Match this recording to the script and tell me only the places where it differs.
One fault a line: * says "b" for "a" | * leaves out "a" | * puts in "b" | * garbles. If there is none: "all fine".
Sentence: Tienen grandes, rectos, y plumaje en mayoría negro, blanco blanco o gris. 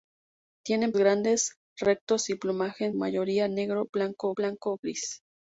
all fine